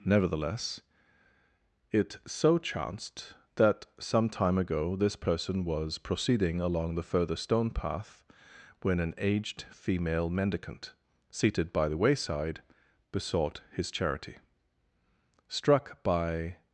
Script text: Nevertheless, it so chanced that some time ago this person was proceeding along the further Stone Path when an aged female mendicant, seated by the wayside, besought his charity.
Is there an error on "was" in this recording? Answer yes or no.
no